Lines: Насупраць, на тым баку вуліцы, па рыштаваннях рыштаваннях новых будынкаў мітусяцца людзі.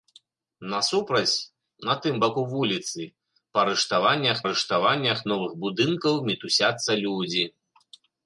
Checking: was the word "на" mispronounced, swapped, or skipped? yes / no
no